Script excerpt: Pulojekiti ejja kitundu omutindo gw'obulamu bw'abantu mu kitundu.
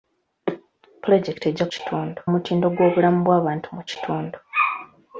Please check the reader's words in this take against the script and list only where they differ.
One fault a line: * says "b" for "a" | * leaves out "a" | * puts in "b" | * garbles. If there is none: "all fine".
all fine